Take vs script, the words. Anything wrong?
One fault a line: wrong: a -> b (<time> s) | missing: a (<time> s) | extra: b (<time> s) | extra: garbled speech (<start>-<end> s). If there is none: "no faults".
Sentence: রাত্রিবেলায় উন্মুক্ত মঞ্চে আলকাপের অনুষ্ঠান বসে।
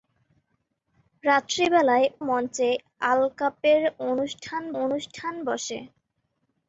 missing: উন্মুক্ত (2.1 s)
extra: অনুষ্ঠান (4.8 s)